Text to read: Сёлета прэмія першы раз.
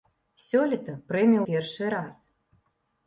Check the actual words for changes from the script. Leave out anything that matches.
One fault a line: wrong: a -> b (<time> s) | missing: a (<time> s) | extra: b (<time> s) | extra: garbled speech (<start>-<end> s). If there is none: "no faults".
no faults